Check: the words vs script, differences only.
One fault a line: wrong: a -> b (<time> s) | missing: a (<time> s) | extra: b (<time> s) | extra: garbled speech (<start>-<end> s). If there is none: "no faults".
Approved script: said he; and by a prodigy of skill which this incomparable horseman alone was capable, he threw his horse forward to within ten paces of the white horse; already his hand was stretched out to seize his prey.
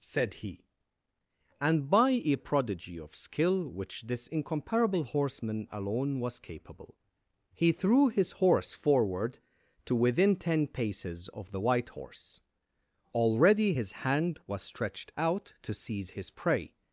no faults